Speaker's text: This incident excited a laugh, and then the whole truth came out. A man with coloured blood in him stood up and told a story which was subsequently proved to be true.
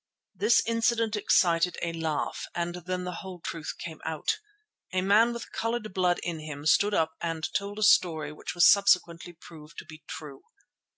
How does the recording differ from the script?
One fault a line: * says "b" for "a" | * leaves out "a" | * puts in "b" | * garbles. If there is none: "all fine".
all fine